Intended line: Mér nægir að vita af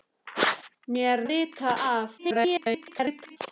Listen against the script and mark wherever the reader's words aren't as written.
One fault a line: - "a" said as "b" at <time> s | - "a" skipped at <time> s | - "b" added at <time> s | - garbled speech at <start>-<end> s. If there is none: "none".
- "nægir" skipped at 1.2 s
- garbled speech at 2.2-3.4 s